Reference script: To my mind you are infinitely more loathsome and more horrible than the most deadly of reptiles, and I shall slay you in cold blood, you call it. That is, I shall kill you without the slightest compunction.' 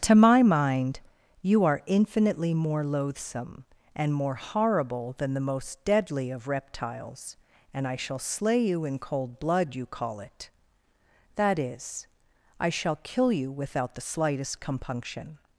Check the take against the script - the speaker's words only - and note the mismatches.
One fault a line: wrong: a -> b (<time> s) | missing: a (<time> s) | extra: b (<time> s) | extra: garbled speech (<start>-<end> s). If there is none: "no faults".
no faults